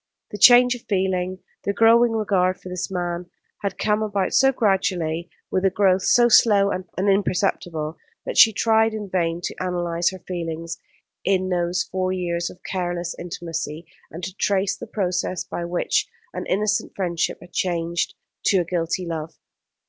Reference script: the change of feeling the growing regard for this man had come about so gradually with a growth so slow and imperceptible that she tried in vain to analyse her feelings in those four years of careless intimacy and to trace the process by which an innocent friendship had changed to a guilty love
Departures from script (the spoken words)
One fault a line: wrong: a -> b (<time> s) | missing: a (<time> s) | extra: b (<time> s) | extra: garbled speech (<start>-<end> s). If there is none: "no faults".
no faults